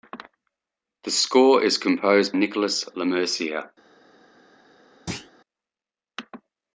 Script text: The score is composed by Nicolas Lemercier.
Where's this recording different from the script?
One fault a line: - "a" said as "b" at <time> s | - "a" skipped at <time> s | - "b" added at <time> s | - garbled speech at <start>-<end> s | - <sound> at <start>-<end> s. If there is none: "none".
- "by" skipped at 2.3 s
- thud at 5.1-5.3 s